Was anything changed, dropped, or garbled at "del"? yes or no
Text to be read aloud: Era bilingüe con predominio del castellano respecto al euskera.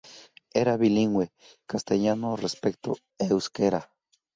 yes